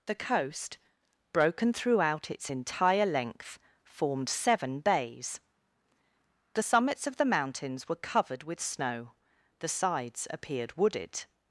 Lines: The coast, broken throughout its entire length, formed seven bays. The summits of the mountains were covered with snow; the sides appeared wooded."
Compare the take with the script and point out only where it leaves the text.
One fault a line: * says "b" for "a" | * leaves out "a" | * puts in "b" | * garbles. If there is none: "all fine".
all fine